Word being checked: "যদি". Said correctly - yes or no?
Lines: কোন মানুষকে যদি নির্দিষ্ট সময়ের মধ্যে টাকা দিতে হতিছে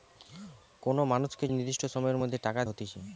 no